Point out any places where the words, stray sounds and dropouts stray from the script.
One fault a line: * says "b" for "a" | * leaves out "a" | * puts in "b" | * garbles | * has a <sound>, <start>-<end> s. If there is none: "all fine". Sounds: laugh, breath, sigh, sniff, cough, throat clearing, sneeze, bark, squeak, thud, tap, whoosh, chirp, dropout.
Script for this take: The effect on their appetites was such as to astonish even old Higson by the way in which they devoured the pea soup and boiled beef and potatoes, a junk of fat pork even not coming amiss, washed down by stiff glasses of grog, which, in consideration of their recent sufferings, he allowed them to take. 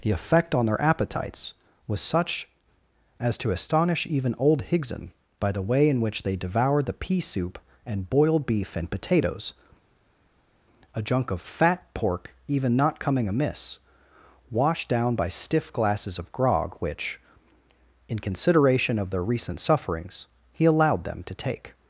all fine